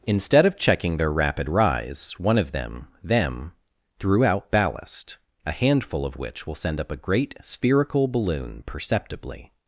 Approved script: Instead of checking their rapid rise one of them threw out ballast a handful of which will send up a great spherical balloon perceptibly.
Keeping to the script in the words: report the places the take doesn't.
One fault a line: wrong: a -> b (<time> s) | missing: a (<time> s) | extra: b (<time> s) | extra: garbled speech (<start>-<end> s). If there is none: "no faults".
extra: them (3.0 s)